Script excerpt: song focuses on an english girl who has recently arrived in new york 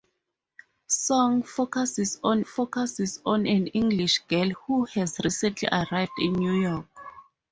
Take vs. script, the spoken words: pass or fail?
fail